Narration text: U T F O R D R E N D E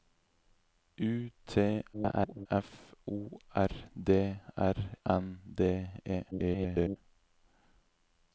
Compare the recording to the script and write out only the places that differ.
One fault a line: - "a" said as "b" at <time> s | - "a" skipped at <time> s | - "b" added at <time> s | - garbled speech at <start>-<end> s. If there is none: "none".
- garbled speech at 1.9-2.5 s
- "E" skipped at 4.7 s
- garbled speech at 6.3-7.0 s